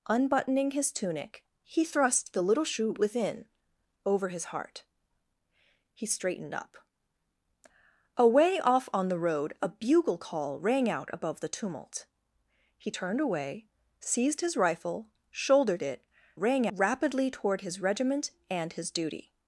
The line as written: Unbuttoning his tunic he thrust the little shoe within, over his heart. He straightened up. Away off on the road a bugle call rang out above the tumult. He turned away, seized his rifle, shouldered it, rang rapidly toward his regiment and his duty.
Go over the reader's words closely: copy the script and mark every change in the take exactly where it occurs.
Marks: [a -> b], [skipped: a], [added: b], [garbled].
Unbuttoning his tunic he thrust the little shoe within, over his heart. He straightened up. Away off on the road a bugle call rang out above the tumult. He turned away, seized his rifle, shouldered it, rang rapidly toward his regiment and his duty.